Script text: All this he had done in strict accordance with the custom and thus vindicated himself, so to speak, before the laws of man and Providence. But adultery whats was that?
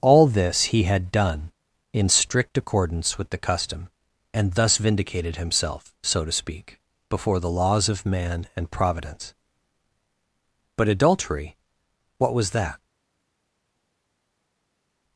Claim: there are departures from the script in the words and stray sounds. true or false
true